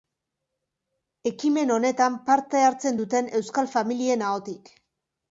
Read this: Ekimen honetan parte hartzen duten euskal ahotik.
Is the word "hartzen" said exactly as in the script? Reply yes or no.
yes